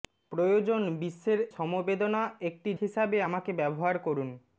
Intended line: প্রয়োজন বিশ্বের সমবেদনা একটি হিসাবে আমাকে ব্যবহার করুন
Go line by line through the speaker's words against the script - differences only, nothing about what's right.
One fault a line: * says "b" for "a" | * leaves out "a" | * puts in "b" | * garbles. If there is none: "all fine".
all fine